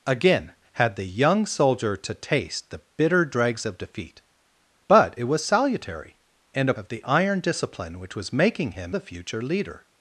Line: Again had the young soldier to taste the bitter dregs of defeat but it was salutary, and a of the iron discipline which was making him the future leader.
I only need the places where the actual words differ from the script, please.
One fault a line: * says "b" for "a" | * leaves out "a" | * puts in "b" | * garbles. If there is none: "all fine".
all fine